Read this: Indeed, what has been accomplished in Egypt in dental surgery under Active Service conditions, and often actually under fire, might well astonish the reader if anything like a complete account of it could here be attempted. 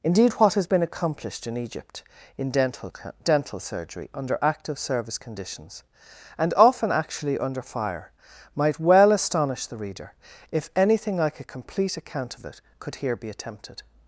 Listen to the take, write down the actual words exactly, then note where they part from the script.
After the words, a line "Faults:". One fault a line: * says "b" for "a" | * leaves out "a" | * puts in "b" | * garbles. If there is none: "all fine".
Indeed, what has been accomplished in Egypt in dental dental surgery under Active Service conditions, and often actually under fire, might well astonish the reader if anything like a complete account of it could here be attempted.
Faults:
* puts in "dental"